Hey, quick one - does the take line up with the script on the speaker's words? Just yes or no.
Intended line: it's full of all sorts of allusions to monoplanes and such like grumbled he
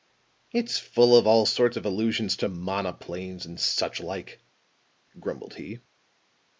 yes